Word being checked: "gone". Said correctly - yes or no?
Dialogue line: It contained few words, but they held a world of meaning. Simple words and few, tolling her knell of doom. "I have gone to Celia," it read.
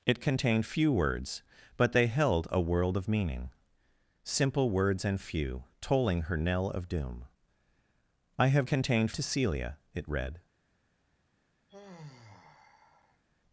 no